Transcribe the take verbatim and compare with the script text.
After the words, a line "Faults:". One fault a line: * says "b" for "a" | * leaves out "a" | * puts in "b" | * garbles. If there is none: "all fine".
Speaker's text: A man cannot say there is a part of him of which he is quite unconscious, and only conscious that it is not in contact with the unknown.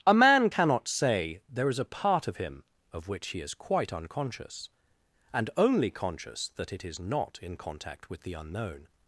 A man cannot say there is a part of him of which he is quite unconscious, and only conscious that it is not in contact with the unknown.
Faults:
all fine